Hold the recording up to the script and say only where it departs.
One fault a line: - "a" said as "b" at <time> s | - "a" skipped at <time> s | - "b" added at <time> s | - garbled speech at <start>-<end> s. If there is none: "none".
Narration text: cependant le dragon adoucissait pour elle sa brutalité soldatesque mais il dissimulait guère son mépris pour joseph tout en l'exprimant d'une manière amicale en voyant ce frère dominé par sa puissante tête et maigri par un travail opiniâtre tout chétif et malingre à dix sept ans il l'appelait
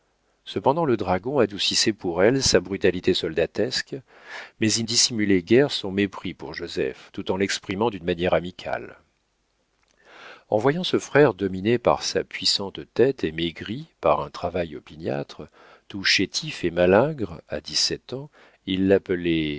none